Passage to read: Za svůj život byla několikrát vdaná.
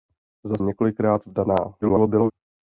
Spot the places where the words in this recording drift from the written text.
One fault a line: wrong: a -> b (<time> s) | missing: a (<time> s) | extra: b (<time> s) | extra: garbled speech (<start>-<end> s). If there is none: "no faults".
missing: svůj život byla (0.6 s)
extra: garbled speech (1.8-2.3 s)